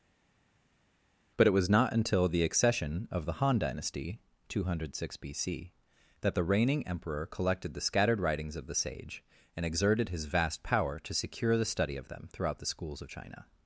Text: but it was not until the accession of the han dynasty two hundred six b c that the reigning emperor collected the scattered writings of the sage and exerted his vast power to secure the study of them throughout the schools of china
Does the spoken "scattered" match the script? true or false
true